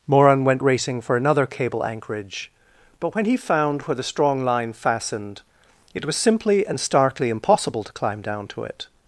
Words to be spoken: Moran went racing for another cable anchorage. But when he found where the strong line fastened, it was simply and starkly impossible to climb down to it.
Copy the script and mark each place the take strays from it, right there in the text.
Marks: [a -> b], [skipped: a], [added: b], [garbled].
Moran went racing for another cable anchorage. But when he found where the strong line fastened, it was simply and starkly impossible to climb down to it.